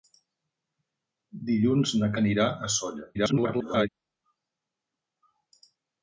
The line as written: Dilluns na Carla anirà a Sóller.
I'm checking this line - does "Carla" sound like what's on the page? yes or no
no